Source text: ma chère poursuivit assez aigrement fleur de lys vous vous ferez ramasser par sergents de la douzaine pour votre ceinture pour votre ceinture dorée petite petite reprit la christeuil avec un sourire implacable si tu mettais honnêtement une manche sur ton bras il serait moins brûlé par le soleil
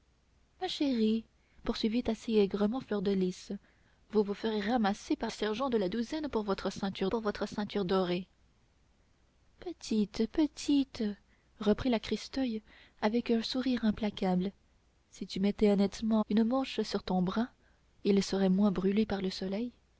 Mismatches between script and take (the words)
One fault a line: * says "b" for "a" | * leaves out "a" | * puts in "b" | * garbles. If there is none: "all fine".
all fine